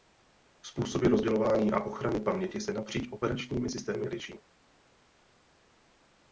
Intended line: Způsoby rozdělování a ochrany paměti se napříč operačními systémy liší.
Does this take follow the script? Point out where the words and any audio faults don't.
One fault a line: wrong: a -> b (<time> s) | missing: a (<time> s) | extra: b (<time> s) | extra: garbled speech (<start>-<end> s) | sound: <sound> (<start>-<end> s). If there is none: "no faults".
no faults